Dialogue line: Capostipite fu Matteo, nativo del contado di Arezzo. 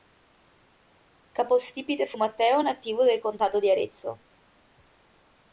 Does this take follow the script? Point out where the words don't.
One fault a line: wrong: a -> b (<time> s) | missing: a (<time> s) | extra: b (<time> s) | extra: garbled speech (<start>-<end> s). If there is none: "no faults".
no faults